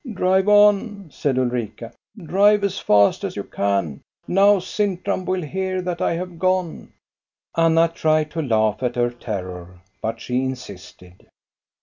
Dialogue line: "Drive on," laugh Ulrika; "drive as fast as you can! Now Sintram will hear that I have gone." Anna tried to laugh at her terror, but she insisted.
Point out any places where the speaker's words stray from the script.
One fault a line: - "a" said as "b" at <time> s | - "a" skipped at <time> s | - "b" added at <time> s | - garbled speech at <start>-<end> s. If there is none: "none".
- "laugh" said as "said" at 1.1 s